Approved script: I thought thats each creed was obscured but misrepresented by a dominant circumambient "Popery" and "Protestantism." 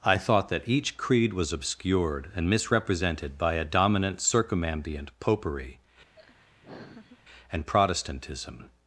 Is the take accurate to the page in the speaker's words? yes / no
no